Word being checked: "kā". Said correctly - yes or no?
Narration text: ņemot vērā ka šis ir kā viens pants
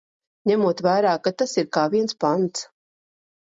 yes